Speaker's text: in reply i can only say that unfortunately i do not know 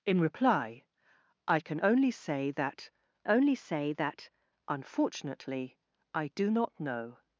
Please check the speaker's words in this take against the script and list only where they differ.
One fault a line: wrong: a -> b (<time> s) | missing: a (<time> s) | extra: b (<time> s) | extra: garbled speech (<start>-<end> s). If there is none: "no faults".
extra: only say that (3.3 s)